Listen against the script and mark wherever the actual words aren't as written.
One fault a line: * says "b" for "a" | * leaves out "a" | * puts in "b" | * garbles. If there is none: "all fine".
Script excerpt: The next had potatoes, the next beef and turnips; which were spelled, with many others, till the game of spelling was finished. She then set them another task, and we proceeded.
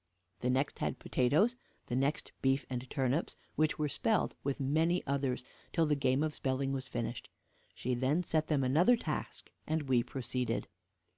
all fine